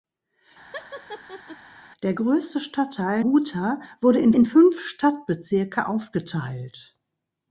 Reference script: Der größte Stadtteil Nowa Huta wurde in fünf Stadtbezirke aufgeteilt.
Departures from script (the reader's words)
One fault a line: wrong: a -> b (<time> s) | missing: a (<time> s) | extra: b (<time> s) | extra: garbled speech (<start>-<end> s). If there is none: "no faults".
missing: Nowa (3.3 s)
extra: in (4.3 s)